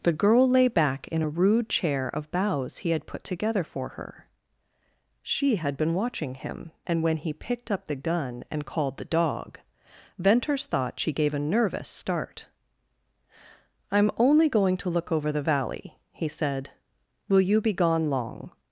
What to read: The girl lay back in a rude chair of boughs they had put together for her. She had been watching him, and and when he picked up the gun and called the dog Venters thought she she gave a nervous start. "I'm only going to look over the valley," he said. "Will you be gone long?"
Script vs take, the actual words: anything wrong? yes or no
yes